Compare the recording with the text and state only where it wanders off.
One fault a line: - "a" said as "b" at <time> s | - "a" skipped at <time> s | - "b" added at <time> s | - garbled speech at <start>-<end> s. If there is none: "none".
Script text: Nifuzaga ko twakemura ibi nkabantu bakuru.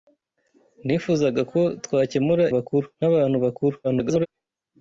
- "ibi" said as "bakuru" at 2.6 s
- garbled speech at 3.8-4.3 s